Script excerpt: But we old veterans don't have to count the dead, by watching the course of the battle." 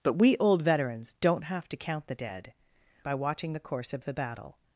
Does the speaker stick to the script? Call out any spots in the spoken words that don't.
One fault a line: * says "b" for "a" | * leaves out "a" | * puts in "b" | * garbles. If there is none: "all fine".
all fine